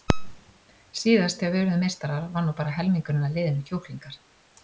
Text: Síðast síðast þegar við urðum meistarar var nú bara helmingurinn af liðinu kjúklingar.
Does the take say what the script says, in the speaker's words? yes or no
no